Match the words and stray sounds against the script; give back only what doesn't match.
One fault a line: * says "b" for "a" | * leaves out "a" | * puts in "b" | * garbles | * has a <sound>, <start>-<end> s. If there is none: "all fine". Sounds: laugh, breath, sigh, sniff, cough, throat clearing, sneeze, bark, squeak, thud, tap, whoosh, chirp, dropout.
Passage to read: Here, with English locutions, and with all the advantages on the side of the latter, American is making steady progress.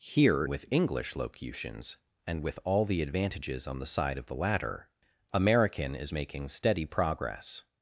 all fine